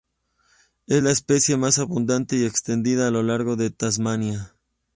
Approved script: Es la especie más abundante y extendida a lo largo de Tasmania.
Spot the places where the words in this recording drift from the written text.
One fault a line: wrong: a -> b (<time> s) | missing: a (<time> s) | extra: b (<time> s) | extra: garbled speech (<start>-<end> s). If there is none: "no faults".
no faults